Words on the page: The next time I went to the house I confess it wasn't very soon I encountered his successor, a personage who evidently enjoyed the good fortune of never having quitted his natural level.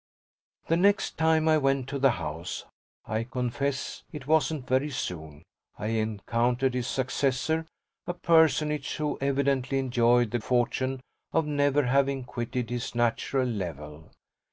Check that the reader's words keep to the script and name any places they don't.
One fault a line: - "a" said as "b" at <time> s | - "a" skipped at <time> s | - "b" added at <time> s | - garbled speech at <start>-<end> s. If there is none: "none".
- "good" skipped at 10.4 s